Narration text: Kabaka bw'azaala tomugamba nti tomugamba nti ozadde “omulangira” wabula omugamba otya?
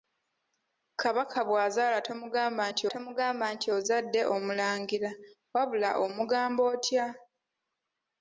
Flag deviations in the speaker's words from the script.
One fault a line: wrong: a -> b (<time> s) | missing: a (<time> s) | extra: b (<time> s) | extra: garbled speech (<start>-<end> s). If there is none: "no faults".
no faults